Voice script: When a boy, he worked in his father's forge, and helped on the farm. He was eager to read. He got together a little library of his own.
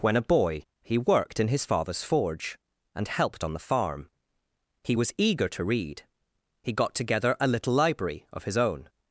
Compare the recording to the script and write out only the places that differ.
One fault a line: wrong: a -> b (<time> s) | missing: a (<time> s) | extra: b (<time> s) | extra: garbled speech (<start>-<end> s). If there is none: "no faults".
no faults